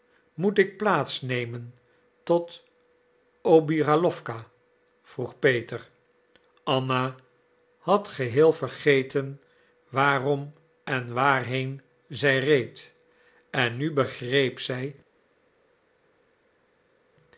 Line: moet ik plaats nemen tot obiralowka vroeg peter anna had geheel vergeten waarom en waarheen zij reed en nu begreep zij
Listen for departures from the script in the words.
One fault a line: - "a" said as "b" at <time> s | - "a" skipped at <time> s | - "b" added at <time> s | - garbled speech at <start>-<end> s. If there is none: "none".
none